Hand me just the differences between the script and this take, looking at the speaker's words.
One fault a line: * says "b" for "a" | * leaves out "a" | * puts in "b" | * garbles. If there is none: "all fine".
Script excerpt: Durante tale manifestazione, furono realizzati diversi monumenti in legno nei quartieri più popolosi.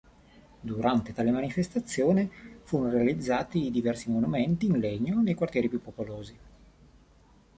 all fine